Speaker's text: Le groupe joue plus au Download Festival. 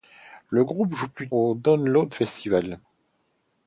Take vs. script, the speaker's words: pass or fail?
pass